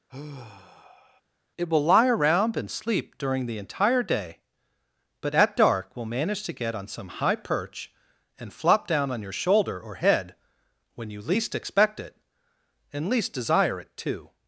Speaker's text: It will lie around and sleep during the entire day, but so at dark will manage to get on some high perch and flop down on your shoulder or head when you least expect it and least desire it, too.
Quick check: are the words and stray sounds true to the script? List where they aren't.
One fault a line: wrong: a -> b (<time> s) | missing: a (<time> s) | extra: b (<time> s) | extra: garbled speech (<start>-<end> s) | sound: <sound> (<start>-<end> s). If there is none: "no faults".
sound: sigh (0.1-1.2 s)
missing: so (5.3 s)